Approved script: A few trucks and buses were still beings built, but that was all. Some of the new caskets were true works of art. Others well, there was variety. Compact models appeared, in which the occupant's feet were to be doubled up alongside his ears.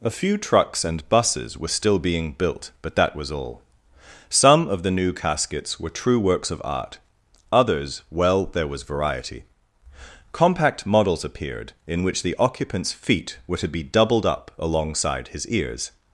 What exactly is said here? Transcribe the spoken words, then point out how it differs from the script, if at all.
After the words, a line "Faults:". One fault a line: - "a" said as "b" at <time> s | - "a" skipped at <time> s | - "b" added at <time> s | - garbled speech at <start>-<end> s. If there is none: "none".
A few trucks and buses were still being built, but that was all. Some of the new caskets were true works of art. Others well, there was variety. Compact models appeared, in which the occupant's feet were to be doubled up alongside his ears.
Faults:
- "beings" said as "being" at 2.0 s